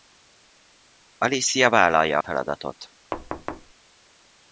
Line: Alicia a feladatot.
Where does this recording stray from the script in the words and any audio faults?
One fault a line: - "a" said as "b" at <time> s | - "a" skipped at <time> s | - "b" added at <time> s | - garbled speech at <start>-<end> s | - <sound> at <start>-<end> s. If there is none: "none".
- "vállalja" added at 1.7 s
- thud at 3.1-3.7 s